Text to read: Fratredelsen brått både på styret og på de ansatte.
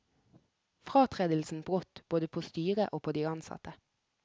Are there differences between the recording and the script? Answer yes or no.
no